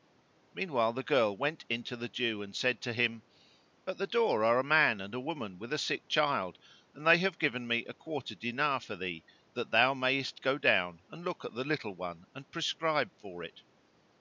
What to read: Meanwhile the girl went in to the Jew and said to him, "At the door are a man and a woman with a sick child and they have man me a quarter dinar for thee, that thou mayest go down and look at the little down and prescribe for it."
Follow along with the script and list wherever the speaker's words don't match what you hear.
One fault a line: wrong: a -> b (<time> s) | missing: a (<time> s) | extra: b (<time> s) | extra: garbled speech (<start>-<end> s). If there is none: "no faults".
wrong: man -> given (7.4 s)
wrong: down -> one (12.0 s)